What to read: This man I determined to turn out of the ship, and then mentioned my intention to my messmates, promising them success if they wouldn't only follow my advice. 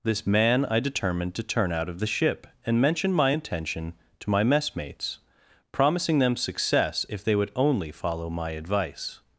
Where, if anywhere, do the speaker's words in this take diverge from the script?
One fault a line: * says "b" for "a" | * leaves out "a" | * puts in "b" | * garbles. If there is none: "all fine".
* leaves out "then"
* says "would" for "wouldn't"